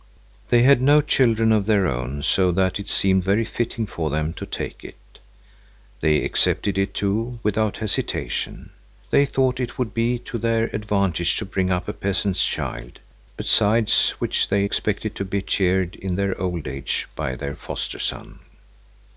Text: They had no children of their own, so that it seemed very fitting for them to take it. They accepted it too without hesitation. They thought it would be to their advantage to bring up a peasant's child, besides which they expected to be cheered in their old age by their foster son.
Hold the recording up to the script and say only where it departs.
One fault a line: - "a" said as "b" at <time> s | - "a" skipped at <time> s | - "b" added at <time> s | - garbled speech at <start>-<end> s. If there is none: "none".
none